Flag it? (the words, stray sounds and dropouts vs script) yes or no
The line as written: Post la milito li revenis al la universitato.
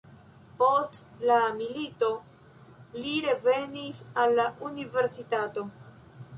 no